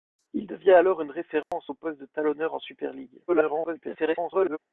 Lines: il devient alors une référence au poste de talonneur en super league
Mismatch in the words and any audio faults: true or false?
true